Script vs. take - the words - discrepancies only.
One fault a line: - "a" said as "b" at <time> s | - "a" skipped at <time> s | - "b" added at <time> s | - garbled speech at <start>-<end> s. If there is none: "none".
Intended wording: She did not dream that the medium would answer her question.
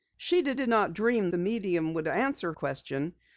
- "did" added at 0.5 s
- "that" skipped at 1.3 s
- "her" skipped at 2.5 s